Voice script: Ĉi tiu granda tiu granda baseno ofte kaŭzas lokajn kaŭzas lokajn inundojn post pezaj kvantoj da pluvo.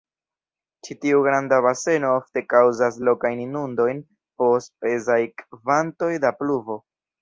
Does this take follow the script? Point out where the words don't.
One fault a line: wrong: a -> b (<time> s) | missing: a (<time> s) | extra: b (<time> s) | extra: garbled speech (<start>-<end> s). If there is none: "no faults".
missing: tiu granda (1.6 s)
missing: kaŭzas lokajn (3.4 s)